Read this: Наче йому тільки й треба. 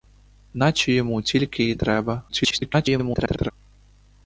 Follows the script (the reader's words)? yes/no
no